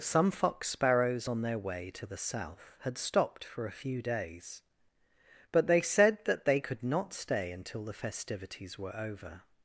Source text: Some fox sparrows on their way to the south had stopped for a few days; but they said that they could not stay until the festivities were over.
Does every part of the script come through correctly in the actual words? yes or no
yes